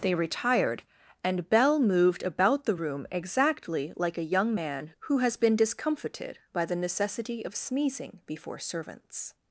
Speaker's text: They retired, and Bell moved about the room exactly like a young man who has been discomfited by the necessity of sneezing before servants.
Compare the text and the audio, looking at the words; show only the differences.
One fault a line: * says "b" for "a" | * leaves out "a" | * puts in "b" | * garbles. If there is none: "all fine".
all fine